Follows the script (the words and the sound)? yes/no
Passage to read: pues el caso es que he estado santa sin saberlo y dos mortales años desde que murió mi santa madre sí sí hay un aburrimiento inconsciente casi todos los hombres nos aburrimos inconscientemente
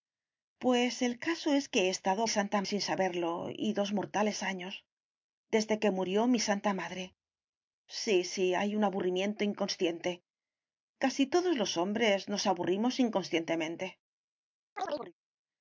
no